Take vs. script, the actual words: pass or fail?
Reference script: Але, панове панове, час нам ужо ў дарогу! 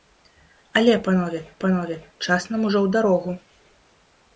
pass